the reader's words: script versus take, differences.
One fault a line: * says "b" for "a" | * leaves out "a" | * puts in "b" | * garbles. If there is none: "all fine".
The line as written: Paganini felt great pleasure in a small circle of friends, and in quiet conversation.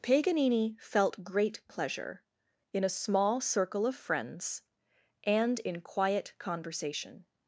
all fine